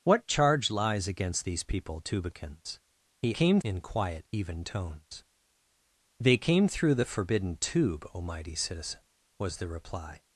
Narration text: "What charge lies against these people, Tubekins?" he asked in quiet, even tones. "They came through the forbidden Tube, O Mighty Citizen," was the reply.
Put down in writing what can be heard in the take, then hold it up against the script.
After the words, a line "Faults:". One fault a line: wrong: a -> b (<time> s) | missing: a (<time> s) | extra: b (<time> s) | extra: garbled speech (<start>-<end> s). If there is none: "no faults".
"What charge lies against these people, Tubekins?" he came in quiet, even tones. "They came through the forbidden Tube, O Mighty Citizen," was the reply.
Faults:
wrong: asked -> came (3.3 s)